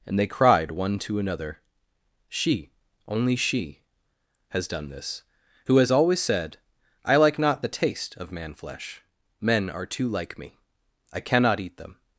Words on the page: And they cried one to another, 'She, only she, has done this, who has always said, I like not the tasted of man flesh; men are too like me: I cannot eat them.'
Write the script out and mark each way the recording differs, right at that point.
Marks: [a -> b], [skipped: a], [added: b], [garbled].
And they cried one to another, 'She, only she, has done this, who has always said, I like not the [tasted -> taste] of man flesh; men are too like me: I cannot eat them.'